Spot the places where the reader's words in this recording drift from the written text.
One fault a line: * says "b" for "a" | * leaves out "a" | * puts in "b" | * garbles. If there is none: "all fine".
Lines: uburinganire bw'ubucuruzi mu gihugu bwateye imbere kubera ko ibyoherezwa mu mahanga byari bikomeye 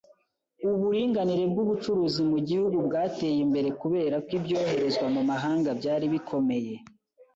all fine